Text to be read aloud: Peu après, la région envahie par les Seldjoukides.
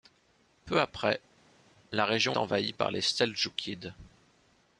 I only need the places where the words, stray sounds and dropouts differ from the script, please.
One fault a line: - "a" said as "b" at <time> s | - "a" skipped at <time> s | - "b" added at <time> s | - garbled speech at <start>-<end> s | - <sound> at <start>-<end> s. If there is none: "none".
none